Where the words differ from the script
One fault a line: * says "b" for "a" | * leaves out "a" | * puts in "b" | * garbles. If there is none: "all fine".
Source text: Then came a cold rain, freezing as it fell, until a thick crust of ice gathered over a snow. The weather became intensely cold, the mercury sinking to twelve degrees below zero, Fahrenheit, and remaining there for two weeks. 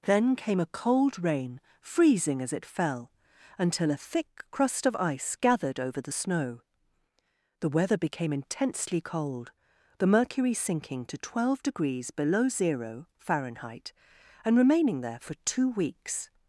* says "the" for "a"